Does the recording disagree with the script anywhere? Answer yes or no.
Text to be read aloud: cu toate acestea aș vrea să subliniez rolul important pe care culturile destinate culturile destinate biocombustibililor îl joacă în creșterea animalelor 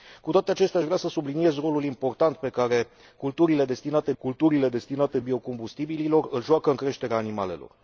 no